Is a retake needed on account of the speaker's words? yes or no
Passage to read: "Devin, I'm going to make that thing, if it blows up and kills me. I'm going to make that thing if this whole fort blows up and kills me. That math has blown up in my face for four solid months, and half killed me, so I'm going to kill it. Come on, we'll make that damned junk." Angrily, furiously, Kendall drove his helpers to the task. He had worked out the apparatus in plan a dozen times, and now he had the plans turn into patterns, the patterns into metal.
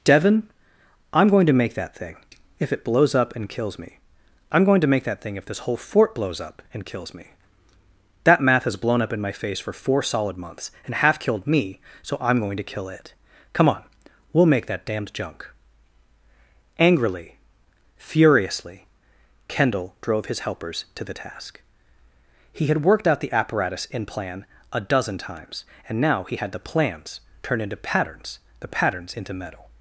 no